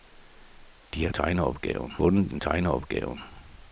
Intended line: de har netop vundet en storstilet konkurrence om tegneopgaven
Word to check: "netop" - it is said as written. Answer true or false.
false